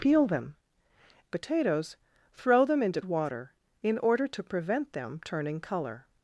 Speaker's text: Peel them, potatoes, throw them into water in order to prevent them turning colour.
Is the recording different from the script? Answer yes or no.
no